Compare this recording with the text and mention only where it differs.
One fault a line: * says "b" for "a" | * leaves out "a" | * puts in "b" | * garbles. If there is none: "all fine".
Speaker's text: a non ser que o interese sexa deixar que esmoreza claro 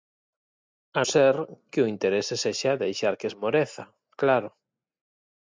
* leaves out "non"